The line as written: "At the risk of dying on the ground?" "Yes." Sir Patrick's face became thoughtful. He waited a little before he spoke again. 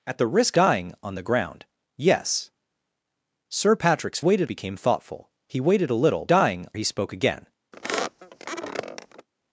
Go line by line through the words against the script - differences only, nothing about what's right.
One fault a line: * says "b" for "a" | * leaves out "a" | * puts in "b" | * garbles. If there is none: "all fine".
* leaves out "of"
* says "waited" for "face"
* says "dying" for "before"